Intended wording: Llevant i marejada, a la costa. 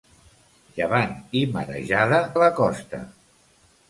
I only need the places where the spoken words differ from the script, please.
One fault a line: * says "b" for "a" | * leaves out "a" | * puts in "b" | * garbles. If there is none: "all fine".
all fine